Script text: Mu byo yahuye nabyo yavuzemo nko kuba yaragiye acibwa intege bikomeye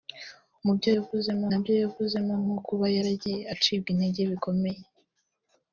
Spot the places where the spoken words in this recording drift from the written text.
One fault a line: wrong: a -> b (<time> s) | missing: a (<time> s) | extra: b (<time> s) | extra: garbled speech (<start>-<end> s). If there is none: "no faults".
wrong: yahuye -> yavuzemo (1.0 s)